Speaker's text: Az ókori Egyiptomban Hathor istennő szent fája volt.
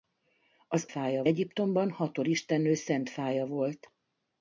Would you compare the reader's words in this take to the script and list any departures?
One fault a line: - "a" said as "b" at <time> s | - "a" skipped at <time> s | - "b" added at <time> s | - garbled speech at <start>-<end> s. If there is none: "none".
- "ókori" said as "fája" at 0.9 s